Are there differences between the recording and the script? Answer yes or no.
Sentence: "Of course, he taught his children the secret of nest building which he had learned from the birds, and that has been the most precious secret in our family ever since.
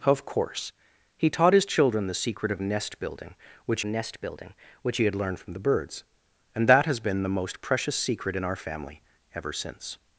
yes